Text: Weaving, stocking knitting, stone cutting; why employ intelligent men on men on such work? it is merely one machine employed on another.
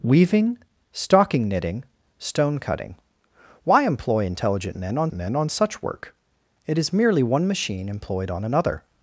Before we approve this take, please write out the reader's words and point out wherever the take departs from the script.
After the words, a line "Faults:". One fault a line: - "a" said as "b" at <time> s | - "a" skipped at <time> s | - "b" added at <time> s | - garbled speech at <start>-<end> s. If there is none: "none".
Weaving, stocking knitting, stone cutting; why employ intelligent men on men on such work? it is merely one machine employed on another.
Faults:
none